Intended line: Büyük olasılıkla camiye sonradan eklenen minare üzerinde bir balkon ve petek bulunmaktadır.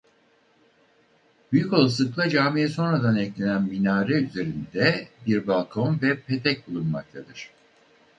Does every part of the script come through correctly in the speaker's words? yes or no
yes